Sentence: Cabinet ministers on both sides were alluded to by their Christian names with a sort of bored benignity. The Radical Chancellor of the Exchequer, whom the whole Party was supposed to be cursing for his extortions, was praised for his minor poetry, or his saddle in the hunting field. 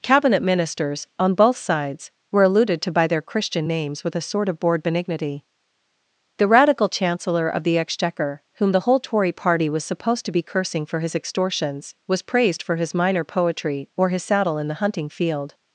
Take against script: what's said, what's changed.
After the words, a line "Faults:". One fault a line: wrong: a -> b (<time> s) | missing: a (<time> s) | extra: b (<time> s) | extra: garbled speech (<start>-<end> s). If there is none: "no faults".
Cabinet ministers on both sides were alluded to by their Christian names with a sort of bored benignity. The Radical Chancellor of the Exchequer, whom the whole Tory party was supposed to be cursing for his extortions, was praised for his minor poetry, or his saddle in the hunting field.
Faults:
extra: Tory (9.0 s)